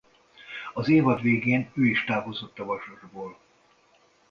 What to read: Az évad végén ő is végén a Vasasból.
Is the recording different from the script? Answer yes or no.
yes